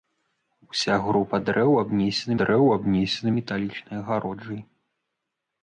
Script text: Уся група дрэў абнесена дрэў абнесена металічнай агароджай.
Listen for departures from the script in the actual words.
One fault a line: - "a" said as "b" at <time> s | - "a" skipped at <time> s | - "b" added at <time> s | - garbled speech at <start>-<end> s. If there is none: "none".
none